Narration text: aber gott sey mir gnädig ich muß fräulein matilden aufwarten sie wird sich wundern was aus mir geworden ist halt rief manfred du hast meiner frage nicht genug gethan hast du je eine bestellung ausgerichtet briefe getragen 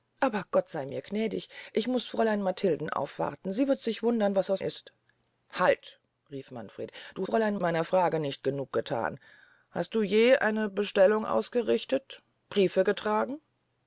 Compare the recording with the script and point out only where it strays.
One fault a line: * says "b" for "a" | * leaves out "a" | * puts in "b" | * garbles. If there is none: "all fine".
* leaves out "mir geworden"
* says "fräulein" for "hast"